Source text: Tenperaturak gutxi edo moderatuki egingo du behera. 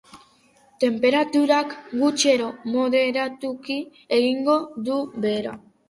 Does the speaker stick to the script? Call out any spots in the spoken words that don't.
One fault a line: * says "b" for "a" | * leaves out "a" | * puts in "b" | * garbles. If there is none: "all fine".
all fine